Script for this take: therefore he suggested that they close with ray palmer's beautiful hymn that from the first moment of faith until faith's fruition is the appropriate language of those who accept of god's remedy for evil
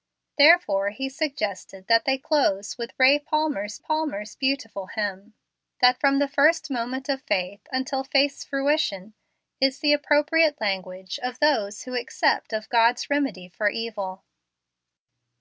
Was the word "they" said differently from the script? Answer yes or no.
no